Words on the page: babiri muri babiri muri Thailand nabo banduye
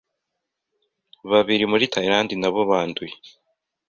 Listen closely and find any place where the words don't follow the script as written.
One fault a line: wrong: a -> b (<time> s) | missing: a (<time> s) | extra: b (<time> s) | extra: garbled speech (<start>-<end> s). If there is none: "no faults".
missing: babiri muri (1.9 s)